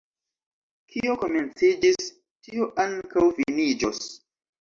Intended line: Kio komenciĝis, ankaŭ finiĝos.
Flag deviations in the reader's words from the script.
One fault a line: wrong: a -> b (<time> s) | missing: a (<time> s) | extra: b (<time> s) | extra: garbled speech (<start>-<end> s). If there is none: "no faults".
extra: tio (2.5 s)